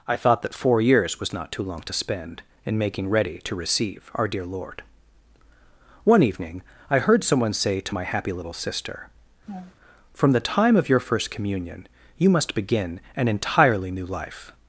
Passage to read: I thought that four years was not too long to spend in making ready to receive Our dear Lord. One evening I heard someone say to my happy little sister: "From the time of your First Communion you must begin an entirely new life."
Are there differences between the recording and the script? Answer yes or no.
no